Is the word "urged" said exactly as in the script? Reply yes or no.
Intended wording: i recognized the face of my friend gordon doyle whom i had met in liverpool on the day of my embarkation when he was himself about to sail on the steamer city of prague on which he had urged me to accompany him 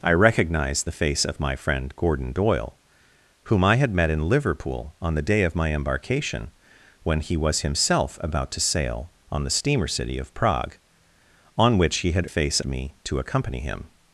no